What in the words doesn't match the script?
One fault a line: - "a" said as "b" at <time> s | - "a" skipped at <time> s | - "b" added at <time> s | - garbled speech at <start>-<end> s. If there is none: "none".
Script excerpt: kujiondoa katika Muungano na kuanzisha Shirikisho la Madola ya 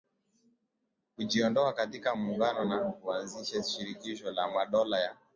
none